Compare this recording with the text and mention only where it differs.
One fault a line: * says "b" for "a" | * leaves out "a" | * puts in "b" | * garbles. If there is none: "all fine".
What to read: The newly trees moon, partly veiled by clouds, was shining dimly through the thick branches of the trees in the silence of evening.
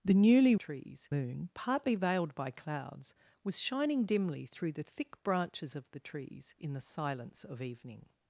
all fine